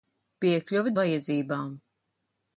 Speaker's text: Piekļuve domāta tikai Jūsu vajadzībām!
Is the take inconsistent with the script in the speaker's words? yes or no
yes